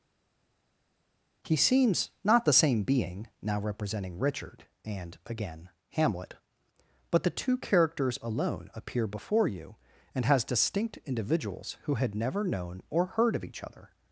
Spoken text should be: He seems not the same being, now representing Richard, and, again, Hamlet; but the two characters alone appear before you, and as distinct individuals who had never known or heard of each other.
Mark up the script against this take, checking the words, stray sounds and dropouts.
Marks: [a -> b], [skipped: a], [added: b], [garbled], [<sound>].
He seems not the same being, now representing Richard, and, again, Hamlet; but the two characters alone appear before you, and [as -> has] distinct individuals who had never known or heard of each other.